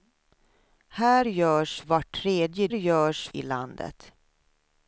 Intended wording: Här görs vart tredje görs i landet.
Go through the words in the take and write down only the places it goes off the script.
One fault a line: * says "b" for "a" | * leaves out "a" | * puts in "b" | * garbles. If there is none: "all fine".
all fine